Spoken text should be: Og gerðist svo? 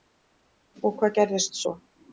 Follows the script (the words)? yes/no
no